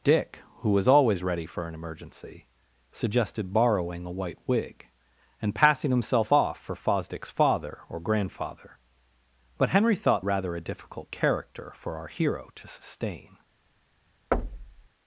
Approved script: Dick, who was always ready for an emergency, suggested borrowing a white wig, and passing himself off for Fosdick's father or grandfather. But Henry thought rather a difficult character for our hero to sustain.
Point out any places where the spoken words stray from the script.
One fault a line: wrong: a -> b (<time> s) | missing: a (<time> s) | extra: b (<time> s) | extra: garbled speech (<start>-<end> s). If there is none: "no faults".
no faults